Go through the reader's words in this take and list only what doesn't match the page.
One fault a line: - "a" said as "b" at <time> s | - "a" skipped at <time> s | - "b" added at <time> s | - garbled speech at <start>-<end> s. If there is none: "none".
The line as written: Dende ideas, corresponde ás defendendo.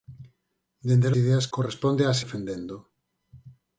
none